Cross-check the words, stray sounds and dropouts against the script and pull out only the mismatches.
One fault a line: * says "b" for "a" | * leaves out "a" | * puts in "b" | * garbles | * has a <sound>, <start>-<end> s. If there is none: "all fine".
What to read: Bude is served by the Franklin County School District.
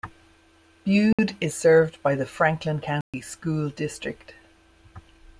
* has a dropout, 1.1-1.2 s
* has a dropout, 3.0-3.1 s